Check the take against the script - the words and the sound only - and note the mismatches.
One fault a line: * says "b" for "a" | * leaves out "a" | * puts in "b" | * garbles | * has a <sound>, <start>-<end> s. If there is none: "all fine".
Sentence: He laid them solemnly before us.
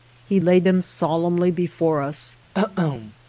* has a cough, 2.5-3.1 s